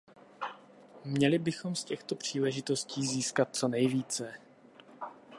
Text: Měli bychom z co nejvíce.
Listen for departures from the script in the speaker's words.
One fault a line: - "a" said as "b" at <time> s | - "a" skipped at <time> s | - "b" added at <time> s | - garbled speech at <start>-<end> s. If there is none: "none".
- "těchto příležitostí získat" added at 1.8 s